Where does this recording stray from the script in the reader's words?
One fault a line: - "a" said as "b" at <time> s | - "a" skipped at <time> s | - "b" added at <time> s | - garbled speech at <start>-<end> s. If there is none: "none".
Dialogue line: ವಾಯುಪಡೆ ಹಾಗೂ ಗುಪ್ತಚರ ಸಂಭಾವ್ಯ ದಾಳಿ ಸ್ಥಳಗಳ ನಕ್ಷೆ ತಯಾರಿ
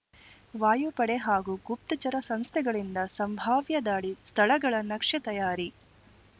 - "ಸಂಸ್ಥೆಗಳಿಂದ" added at 2.2 s